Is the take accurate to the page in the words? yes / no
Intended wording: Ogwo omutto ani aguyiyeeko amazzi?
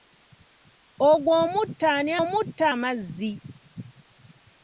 no